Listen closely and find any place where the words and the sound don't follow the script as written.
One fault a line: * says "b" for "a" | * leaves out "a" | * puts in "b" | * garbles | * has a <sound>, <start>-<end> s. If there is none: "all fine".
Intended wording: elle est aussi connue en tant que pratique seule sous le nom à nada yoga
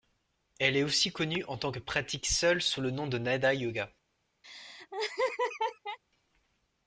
* says "de" for "à"
* has a laugh, 4.4-6.0 s